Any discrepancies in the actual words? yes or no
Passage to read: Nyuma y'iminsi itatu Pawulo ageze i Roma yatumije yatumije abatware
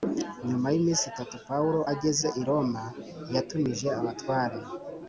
yes